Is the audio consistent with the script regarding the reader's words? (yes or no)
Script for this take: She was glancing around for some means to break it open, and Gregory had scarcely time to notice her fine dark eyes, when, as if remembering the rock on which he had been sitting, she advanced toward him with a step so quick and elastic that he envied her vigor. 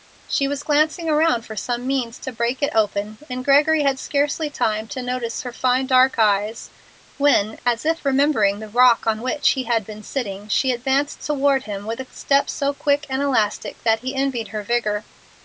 yes